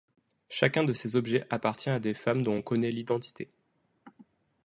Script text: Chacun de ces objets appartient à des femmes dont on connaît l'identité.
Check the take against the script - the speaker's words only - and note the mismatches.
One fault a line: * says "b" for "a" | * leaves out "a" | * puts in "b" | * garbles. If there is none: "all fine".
all fine